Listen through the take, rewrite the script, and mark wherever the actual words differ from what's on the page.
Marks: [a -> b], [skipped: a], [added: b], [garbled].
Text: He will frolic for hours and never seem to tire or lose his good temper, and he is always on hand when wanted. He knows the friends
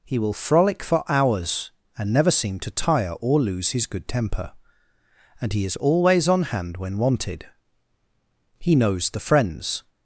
He will frolic for hours and never seem to tire or lose his good temper, and he is always on hand when wanted. He knows the friends